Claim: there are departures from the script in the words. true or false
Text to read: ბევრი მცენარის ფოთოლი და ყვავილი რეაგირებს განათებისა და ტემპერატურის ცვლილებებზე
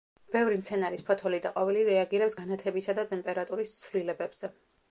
false